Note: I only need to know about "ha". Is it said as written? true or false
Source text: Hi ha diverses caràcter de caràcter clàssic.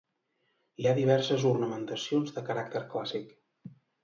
true